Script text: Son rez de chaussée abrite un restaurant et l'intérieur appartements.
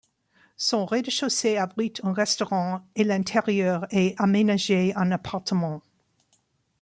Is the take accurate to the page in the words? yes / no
no